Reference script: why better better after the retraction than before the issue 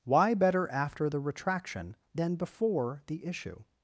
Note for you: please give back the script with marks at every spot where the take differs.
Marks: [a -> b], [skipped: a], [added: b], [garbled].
why better [skipped: better] after the retraction than before the issue